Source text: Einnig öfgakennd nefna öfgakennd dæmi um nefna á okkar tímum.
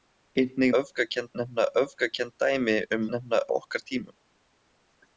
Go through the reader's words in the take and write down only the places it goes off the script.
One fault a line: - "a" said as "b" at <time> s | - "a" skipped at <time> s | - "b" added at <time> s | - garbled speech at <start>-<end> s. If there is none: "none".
none